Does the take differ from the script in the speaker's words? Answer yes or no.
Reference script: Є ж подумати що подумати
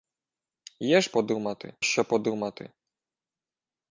no